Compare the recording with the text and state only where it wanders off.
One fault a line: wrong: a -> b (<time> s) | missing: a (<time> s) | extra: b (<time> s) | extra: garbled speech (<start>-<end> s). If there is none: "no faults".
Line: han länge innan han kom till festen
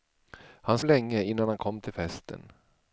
no faults